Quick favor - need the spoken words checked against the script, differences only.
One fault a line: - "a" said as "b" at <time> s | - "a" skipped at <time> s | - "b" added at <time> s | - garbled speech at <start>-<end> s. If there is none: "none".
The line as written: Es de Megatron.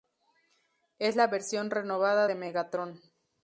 - "la versión renovada" added at 1.1 s